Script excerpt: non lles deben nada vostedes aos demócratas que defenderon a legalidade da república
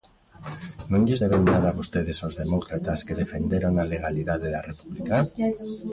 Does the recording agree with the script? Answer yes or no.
yes